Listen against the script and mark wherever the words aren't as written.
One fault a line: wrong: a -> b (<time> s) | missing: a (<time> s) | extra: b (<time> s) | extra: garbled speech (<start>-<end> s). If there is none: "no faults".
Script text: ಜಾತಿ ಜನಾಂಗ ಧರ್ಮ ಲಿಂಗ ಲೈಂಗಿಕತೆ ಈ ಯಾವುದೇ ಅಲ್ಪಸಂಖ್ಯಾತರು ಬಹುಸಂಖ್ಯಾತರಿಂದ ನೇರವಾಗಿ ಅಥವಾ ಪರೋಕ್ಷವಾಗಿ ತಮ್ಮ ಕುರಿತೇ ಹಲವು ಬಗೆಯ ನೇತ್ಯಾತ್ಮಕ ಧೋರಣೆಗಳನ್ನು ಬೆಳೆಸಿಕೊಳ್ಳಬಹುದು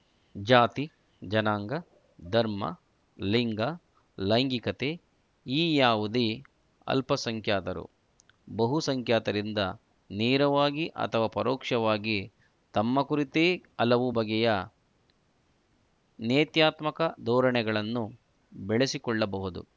no faults